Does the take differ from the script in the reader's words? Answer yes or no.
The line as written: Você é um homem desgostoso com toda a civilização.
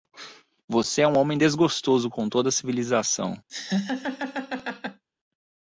no